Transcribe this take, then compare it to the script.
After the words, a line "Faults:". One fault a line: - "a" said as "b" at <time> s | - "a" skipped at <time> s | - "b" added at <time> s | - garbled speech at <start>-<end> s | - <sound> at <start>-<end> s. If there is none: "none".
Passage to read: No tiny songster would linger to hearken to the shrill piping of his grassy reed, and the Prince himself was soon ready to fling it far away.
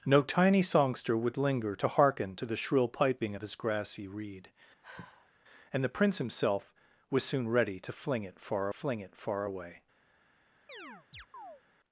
No tiny songster would linger to hearken to the shrill piping of his grassy reed, and the Prince himself was soon ready to fling it far fling it far away.
Faults:
- sigh at 4.8-5.3 s
- "fling it far" added at 8.7 s
- chirp at 10.7-11.6 s